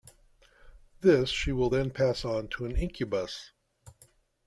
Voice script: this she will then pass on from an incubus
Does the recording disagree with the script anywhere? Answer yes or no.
yes